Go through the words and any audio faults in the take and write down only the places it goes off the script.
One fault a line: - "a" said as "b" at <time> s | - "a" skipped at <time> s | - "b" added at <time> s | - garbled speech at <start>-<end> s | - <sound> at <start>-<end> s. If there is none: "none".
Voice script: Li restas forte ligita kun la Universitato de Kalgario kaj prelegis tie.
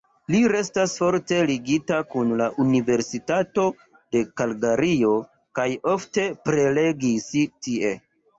- "ofte" added at 6.0 s